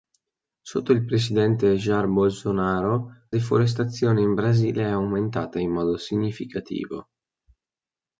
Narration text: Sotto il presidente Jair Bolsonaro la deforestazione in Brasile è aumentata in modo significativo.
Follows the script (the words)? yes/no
no